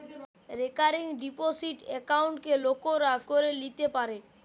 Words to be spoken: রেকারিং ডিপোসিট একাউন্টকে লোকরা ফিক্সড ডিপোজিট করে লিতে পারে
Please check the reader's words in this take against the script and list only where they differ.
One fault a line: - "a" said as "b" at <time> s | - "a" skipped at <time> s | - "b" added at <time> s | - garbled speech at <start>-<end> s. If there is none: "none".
- "ফিক্সড ডিপোজিট" skipped at 3.1 s